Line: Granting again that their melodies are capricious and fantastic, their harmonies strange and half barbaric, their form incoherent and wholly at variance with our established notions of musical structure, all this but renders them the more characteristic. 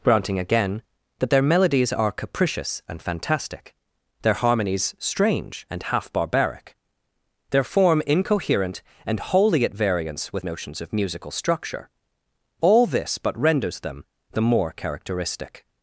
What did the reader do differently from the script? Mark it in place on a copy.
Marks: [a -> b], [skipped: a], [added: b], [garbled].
Granting again that their melodies are capricious and fantastic, their harmonies strange and half barbaric, their form incoherent and wholly at variance with [skipped: our established] notions of musical structure, all this but renders them the more characteristic.